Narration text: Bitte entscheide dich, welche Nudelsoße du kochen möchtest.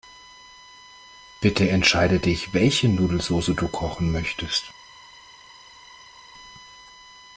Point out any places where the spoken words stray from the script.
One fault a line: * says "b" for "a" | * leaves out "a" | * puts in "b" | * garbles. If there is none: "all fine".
all fine